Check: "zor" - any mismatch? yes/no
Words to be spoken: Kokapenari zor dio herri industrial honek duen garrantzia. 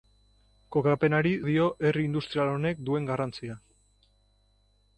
yes